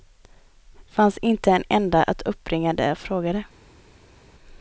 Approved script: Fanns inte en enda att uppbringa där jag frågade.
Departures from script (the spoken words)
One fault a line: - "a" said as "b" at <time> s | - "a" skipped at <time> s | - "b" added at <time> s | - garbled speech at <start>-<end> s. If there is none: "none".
none